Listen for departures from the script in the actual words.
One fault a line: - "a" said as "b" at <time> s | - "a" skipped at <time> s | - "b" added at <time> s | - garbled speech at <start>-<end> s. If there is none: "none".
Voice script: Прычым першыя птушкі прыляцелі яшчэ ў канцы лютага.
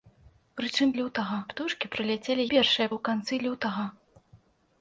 - "першыя" said as "лютага" at 1.0 s
- "яшчэ" said as "першыя" at 2.5 s